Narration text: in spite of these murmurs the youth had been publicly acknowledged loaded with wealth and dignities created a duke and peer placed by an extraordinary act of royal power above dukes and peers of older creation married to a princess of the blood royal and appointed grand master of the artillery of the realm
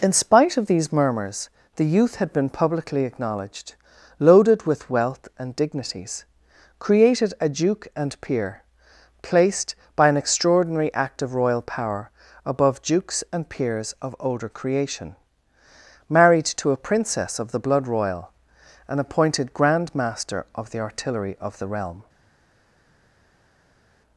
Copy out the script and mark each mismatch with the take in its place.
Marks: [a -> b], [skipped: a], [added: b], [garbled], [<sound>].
in spite of these murmurs the youth had been publicly acknowledged loaded with wealth and dignities created a duke and peer placed by an extraordinary act of royal power above dukes and peers of older creation married to a princess of the blood royal and appointed grand master of the artillery of the realm